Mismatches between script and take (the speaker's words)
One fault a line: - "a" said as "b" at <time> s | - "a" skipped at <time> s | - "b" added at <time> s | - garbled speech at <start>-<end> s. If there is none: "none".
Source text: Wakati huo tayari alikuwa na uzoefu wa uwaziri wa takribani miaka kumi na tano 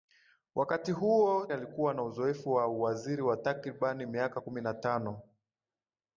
- "tayari" skipped at 1.5 s